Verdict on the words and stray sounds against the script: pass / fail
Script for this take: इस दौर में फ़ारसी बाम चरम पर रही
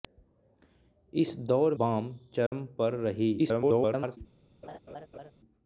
fail